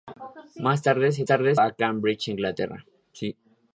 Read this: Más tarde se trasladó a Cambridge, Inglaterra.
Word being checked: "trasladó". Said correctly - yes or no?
no